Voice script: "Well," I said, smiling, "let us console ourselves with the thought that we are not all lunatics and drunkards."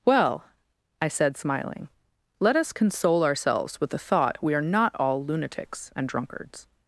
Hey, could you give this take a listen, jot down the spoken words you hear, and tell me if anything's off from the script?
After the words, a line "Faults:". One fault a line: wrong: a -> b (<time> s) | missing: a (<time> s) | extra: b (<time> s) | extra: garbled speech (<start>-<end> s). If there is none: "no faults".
"Well," I said, smiling, "let us console ourselves with the thought we are not all lunatics and drunkards."
Faults:
missing: that (4.4 s)